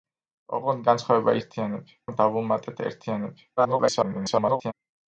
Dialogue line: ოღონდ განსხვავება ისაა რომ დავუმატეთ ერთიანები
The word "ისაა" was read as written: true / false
false